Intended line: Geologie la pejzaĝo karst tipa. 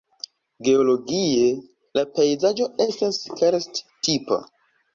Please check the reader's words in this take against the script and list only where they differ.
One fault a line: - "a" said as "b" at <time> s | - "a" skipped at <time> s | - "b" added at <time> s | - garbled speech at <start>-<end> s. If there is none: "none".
- "estas" added at 2.9 s